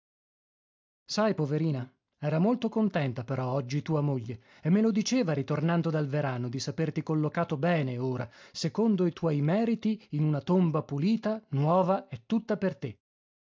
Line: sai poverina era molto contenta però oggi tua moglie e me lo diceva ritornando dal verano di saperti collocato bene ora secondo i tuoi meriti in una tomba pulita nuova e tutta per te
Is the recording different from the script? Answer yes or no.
no